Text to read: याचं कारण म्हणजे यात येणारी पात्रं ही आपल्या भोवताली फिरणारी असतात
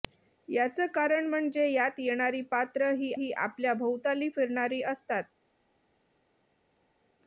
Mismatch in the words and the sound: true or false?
true